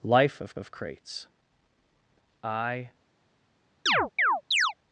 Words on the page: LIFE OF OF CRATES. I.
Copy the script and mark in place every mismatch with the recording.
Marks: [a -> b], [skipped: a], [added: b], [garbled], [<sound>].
LIFE OF OF CRATES. I. [chirp]